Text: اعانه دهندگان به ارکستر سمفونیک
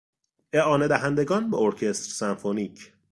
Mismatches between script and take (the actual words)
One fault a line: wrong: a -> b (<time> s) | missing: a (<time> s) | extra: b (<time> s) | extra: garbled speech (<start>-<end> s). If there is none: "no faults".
no faults